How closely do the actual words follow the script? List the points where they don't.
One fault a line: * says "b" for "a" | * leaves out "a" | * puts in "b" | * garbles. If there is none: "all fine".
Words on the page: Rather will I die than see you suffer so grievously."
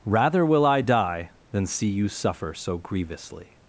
all fine